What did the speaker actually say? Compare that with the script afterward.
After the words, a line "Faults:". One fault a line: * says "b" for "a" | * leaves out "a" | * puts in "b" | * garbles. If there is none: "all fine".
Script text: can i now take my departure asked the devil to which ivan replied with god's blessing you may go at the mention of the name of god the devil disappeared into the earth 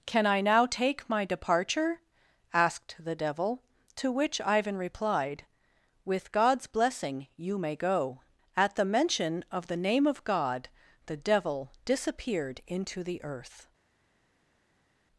can i now take my departure asked the devil to which ivan replied with god's blessing you may go at the mention of the name of god the devil disappeared into the earth
Faults:
all fine